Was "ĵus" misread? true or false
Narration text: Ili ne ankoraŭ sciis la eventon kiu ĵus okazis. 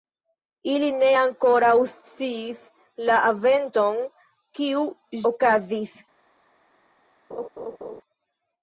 true